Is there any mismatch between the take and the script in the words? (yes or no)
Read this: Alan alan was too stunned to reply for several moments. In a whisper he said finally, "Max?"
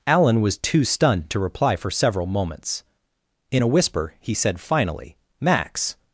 yes